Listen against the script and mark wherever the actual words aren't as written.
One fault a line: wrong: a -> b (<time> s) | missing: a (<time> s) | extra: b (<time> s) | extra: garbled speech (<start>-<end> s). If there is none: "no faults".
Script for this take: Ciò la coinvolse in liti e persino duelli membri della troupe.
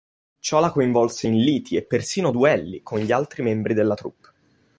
extra: con gli altri (2.8 s)